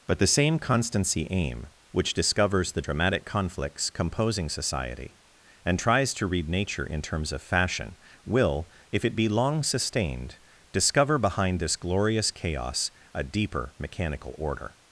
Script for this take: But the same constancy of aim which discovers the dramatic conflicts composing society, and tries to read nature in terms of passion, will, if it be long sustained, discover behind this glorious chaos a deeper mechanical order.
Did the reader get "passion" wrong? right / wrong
wrong